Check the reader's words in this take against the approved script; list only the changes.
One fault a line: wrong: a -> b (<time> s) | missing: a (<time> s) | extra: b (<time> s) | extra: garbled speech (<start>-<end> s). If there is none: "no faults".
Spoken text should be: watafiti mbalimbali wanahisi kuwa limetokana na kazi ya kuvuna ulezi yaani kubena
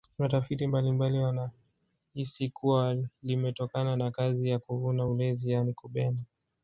no faults